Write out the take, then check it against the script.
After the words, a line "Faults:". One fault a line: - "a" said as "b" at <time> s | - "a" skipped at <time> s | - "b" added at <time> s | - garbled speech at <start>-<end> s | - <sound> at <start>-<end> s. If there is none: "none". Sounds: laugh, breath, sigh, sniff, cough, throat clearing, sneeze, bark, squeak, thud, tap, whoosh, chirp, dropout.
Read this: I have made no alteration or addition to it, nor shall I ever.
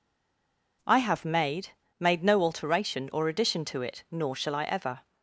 I have made made no alteration or addition to it, nor shall I ever.
Faults:
- "made" added at 2.0 s